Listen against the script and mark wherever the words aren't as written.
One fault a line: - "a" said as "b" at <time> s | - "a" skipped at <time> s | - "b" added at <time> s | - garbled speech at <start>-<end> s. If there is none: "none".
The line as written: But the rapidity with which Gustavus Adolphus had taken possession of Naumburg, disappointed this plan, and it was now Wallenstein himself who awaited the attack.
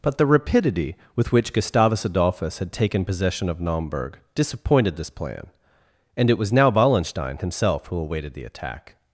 none